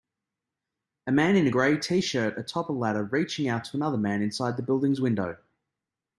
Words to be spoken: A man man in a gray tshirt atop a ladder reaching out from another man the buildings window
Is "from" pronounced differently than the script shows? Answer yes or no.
yes